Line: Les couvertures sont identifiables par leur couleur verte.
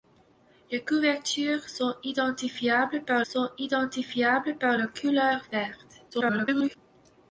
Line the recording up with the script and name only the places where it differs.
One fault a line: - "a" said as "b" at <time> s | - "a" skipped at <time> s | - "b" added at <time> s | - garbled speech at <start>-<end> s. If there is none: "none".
- "sont identifiables par" added at 3.2 s
- garbled speech at 6.1-6.8 s